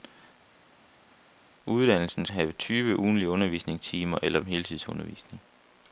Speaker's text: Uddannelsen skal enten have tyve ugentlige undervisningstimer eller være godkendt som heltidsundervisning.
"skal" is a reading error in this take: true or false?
true